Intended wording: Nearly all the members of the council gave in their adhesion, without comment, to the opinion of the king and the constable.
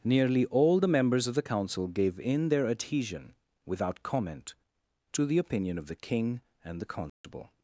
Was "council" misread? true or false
false